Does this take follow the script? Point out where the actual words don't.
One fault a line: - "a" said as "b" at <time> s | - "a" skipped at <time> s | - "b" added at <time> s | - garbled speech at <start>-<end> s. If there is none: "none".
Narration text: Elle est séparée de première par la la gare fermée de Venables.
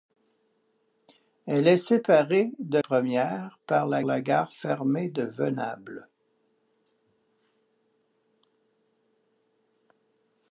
none